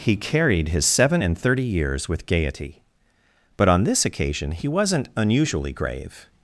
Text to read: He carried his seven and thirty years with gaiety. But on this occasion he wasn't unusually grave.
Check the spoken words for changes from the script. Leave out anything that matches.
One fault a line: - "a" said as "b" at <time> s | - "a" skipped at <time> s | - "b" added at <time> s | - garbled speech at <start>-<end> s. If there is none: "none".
none